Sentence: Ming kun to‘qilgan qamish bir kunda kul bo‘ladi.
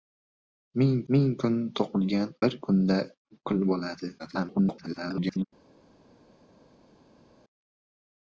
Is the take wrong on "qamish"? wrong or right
wrong